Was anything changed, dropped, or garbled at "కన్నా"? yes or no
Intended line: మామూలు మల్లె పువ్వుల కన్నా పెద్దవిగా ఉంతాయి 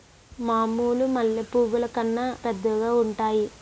no